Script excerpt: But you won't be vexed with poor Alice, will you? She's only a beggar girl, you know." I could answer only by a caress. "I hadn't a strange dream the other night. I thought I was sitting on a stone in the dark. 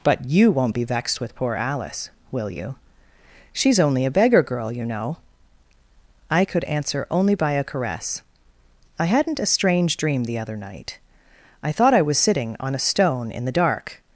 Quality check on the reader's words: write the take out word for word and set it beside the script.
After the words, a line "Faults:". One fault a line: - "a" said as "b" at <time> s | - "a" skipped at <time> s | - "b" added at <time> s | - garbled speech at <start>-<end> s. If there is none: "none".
But you won't be vexed with poor Alice, will you? She's only a beggar girl, you know." I could answer only by a caress. "I hadn't a strange dream the other night. I thought I was sitting on a stone in the dark.
Faults:
none